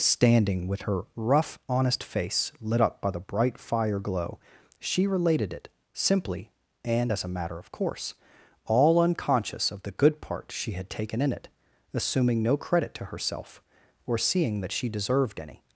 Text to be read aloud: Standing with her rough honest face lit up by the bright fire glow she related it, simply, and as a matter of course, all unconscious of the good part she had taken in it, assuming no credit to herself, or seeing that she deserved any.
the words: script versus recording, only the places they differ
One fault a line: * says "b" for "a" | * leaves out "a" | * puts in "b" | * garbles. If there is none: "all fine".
all fine